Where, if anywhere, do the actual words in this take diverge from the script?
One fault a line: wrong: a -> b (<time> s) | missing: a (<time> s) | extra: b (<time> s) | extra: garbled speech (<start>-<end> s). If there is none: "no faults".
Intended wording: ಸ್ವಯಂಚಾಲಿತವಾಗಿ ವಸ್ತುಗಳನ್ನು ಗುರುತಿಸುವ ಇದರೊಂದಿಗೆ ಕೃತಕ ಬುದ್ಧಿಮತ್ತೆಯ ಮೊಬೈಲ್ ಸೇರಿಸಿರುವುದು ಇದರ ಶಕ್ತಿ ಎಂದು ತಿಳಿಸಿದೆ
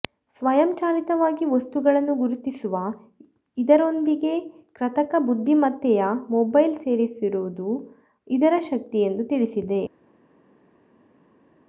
no faults